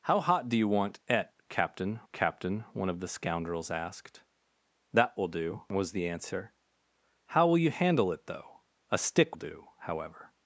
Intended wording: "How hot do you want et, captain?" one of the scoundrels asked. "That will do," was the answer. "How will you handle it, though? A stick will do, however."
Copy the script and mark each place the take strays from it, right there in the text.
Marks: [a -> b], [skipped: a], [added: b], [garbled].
"How hot do you want et, captain?" [added: captain] one of the scoundrels asked. "That will do," was the answer. "How will you handle it, though? A stick [skipped: will] do, however."